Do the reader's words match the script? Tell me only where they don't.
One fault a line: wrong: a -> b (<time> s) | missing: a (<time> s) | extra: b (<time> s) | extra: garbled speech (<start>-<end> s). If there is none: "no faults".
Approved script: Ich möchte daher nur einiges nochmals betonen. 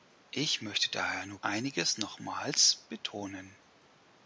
no faults